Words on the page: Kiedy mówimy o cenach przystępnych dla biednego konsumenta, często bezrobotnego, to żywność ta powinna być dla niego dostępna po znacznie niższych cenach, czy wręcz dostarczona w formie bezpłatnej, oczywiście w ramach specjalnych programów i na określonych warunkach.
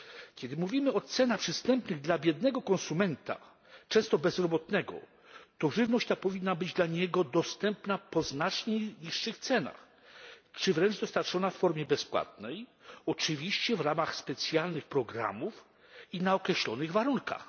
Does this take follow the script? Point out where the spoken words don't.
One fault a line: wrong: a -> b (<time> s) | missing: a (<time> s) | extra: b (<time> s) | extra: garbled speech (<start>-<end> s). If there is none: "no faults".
no faults